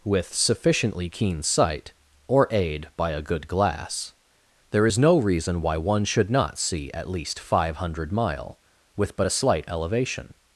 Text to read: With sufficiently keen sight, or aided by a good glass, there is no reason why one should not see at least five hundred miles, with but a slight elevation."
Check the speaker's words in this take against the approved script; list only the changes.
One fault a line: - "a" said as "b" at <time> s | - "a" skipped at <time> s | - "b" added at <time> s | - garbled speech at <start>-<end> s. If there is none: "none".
- "aided" said as "aid" at 2.5 s
- "miles" said as "mile" at 8.1 s